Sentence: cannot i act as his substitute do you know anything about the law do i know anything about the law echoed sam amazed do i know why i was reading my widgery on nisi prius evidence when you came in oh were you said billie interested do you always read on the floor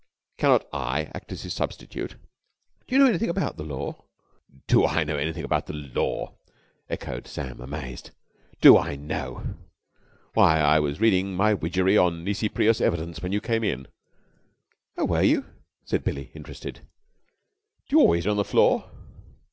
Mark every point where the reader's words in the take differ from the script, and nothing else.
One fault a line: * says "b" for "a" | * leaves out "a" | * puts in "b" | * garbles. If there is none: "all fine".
* leaves out "read"